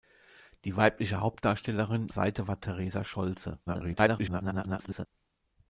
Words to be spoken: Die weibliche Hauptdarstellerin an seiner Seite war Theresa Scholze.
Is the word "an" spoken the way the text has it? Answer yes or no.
no